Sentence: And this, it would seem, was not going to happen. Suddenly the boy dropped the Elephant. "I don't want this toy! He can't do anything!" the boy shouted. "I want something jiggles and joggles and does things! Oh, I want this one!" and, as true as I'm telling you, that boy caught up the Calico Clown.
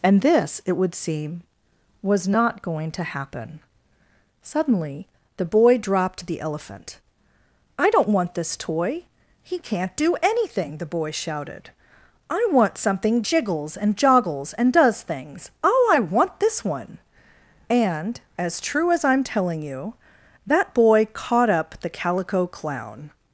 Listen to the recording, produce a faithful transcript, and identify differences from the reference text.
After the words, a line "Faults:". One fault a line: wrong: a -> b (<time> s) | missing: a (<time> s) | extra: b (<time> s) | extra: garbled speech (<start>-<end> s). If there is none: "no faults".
And this, it would seem, was not going to happen. Suddenly the boy dropped the Elephant. "I don't want this toy! He can't do anything!" the boy shouted. "I want something jiggles and joggles and does things! Oh, I want this one!" and, as true as I'm telling you, that boy caught up the Calico Clown.
Faults:
no faults